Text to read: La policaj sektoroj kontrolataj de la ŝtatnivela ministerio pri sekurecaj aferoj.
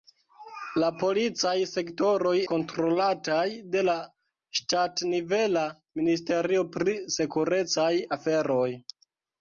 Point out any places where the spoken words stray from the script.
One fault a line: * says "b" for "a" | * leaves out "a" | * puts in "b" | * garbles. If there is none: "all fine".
all fine